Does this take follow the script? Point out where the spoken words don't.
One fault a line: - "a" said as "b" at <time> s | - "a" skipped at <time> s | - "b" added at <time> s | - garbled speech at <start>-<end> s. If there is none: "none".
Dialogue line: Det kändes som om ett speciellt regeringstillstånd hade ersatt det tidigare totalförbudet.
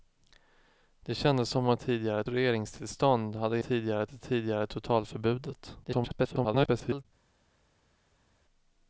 - "speciellt" said as "tidigare" at 1.8 s
- "ersatt" said as "tidigare" at 3.6 s
- garbled speech at 5.8-7.1 s